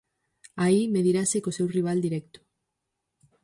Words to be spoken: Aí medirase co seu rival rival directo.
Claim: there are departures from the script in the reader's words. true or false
true